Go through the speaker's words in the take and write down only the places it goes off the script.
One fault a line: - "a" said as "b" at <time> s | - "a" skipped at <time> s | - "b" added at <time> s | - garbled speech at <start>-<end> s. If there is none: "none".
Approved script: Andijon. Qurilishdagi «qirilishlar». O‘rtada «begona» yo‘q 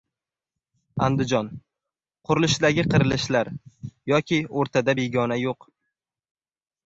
- "Yoki" added at 4.1 s